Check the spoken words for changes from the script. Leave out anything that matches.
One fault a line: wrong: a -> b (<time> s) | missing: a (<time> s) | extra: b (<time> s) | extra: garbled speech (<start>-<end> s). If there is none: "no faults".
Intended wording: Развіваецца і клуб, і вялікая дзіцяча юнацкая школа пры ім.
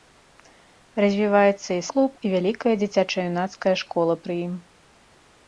no faults